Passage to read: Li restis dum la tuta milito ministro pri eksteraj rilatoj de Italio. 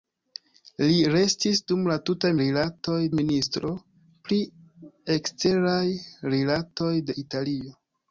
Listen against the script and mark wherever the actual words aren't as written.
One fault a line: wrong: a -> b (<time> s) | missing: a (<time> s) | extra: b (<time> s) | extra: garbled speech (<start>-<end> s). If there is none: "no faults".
wrong: milito -> rilatoj (2.4 s)